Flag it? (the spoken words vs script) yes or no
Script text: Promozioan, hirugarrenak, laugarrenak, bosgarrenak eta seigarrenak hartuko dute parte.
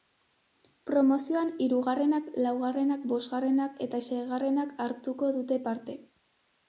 no